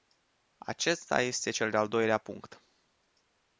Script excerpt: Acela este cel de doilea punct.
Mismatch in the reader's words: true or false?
true